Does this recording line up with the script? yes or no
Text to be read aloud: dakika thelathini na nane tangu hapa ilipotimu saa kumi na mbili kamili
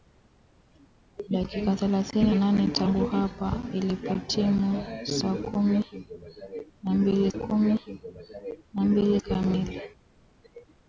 no